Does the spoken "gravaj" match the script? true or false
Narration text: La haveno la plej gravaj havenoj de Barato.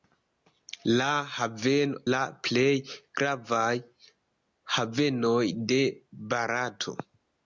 true